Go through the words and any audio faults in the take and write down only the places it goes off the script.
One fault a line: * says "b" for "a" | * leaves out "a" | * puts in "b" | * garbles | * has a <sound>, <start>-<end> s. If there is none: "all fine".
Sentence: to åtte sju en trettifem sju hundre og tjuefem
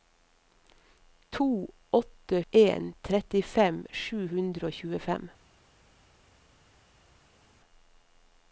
* leaves out "sju"